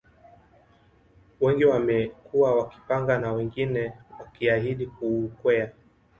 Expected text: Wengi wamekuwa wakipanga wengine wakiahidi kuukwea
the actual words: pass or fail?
fail